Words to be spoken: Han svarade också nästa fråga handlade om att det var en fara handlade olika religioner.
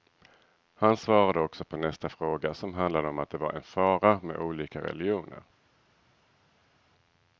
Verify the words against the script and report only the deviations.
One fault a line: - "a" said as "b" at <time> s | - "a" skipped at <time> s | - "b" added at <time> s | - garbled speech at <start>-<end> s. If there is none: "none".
- "på" added at 1.6 s
- "som" added at 2.5 s
- "handlade" said as "med" at 4.2 s